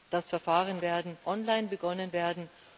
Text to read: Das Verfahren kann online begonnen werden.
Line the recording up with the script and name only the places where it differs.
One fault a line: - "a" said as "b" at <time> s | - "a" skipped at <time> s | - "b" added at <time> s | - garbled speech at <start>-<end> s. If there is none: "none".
- "kann" said as "werden" at 0.8 s